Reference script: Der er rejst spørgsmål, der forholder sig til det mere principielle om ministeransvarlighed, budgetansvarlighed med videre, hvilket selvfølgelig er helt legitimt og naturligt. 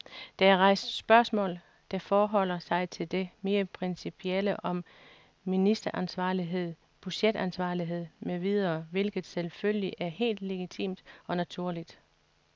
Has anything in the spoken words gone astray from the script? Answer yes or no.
no